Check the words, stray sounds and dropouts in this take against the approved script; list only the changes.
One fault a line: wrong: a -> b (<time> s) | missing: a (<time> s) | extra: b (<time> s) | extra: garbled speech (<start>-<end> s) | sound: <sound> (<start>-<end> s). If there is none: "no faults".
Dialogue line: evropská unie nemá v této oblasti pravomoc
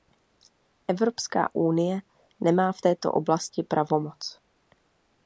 no faults